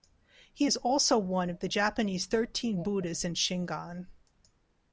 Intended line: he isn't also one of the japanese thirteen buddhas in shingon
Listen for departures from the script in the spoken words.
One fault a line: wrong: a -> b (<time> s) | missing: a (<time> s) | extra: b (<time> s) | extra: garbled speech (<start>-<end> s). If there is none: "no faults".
wrong: isn't -> is (0.6 s)